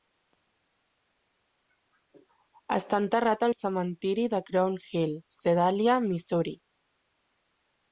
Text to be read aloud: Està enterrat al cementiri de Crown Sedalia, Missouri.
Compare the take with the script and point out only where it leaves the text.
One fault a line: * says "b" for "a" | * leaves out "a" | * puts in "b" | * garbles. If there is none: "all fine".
* puts in "Hill"